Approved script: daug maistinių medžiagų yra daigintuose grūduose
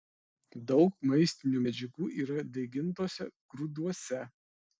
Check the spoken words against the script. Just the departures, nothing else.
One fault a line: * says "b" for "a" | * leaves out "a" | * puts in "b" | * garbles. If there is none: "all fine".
all fine